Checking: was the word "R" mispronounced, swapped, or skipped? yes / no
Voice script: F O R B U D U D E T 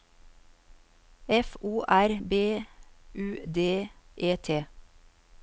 no